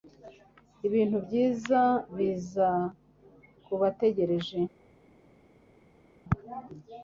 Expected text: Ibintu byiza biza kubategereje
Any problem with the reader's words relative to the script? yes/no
no